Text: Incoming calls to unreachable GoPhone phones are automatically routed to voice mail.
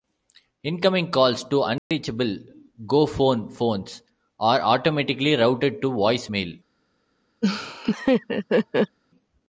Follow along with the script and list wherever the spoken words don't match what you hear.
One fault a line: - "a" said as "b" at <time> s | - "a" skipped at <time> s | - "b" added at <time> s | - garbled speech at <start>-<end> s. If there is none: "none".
none